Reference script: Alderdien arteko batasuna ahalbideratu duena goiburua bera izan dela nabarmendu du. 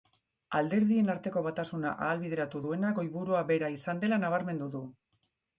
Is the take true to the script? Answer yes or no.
yes